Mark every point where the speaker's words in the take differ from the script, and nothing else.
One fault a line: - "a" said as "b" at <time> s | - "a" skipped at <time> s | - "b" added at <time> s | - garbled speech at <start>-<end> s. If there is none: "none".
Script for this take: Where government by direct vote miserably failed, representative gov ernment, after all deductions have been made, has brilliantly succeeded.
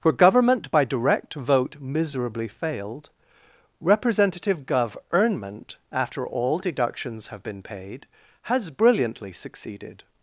- "made" said as "paid" at 7.6 s